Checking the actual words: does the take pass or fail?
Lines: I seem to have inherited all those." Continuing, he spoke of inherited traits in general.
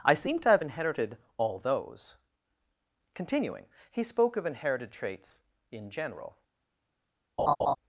pass